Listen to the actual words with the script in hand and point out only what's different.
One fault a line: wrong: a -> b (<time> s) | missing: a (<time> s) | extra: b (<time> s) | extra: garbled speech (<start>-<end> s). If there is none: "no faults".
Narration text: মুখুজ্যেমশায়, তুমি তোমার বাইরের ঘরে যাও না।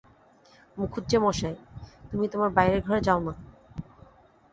no faults